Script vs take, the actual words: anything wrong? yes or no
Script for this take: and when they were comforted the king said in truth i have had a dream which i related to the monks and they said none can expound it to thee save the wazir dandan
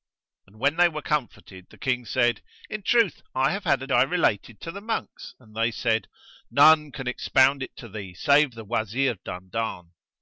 yes